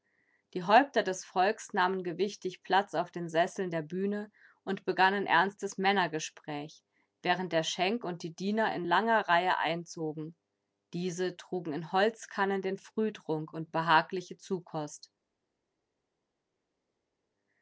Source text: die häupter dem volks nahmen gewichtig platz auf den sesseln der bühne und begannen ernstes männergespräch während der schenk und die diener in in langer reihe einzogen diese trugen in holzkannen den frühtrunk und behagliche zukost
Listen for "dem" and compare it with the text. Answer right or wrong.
wrong